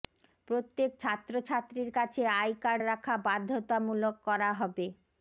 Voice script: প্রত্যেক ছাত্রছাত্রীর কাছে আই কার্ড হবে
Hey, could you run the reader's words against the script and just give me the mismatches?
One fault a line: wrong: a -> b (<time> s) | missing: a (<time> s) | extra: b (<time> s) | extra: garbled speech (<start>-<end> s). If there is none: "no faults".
extra: রাখা বাধ্যতামূলক করা (2.8 s)